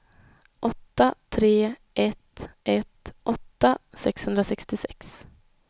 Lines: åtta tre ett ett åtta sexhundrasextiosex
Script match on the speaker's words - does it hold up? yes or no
yes